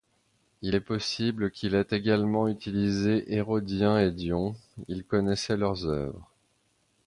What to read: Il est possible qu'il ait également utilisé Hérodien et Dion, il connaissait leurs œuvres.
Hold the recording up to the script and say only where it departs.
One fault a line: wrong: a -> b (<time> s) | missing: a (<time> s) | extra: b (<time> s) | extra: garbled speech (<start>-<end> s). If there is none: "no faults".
no faults